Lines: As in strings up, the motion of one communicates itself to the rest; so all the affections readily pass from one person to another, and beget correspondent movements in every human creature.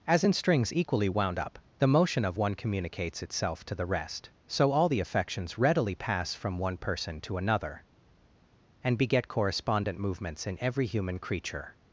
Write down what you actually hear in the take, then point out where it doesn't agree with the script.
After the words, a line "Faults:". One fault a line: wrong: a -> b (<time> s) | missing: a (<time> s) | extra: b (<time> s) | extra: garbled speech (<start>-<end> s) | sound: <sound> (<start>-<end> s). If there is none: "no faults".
As in strings equally wound up, the motion of one communicates itself to the rest; so all the affections readily pass from one person to another, and beget correspondent movements in every human creature.
Faults:
extra: equally wound (0.7 s)